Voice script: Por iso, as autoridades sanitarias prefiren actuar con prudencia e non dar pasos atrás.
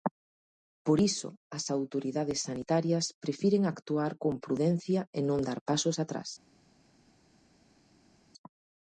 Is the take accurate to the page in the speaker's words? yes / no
yes